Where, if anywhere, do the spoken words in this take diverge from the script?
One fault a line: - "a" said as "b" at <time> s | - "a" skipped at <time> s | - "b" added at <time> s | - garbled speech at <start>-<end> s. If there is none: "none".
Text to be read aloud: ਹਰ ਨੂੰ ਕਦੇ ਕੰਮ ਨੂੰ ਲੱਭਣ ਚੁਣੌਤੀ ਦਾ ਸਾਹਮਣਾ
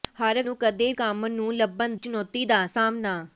none